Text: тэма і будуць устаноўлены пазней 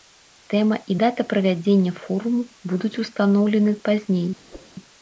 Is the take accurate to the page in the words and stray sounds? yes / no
no